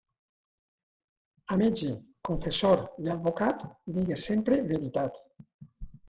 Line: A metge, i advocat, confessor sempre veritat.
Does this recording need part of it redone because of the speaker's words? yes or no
yes